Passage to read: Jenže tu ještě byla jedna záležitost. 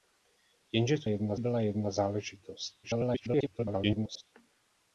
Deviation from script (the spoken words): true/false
true